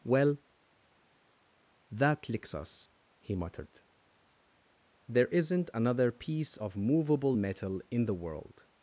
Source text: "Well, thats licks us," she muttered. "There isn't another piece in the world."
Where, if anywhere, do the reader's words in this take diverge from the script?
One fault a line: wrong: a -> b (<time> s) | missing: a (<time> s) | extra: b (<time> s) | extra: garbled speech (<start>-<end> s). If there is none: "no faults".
wrong: thats -> that (1.9 s)
wrong: she -> he (3.2 s)
extra: of movable metal (6.5 s)